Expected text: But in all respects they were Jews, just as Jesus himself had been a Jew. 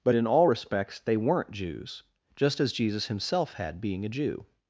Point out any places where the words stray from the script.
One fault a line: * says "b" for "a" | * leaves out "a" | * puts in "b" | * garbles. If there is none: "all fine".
* says "weren't" for "were"
* says "being" for "been"